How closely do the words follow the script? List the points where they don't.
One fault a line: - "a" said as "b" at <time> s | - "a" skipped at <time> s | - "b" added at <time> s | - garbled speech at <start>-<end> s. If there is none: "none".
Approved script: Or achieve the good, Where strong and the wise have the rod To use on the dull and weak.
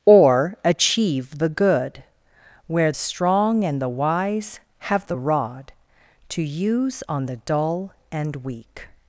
none